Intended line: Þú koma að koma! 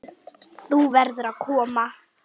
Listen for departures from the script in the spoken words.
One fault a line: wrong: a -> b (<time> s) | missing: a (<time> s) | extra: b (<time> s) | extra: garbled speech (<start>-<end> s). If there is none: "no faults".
wrong: koma -> verður (1.0 s)